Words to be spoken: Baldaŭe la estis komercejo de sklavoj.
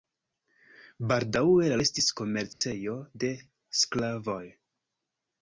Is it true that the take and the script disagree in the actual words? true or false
false